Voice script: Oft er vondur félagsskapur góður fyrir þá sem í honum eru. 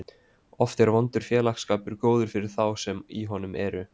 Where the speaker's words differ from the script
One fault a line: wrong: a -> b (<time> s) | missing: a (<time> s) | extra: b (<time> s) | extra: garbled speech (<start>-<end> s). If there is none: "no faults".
no faults